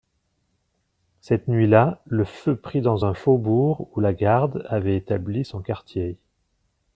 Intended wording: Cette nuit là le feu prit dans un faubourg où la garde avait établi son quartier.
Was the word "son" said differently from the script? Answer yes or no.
no